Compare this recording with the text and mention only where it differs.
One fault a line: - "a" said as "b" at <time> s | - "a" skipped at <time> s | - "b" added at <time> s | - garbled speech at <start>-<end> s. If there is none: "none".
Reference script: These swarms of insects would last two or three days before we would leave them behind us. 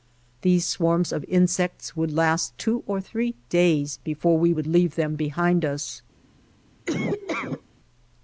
none